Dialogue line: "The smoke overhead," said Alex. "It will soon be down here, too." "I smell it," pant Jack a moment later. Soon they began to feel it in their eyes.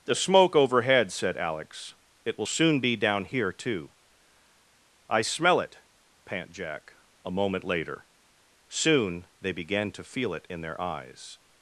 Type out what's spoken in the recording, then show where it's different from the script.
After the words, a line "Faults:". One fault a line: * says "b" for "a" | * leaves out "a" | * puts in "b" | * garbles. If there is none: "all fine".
"The smoke overhead," said Alex. "It will soon be down here, too." "I smell it," pant Jack a moment later. Soon they began to feel it in their eyes.
Faults:
all fine